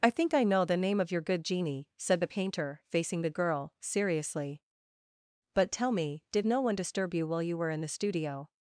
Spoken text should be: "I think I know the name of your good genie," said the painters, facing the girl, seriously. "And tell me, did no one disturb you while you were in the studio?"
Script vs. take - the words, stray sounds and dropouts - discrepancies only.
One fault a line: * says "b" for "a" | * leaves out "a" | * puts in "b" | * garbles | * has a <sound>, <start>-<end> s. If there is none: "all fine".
* says "painter" for "painters"
* says "But" for "And"